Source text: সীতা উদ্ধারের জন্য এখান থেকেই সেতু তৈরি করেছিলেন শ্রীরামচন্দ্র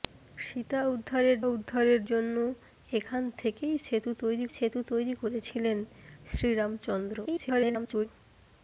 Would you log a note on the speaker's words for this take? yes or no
yes